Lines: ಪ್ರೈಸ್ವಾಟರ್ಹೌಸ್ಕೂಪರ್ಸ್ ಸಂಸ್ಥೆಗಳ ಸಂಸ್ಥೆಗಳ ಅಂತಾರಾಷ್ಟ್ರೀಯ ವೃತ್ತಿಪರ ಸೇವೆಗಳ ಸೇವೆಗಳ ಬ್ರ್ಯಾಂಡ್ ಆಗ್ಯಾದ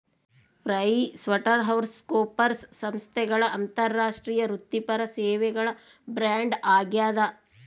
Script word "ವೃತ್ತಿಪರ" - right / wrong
right